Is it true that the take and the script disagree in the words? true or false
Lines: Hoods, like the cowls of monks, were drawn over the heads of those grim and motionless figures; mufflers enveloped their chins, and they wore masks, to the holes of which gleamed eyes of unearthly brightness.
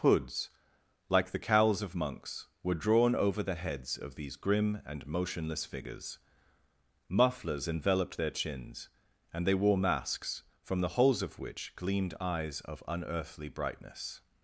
true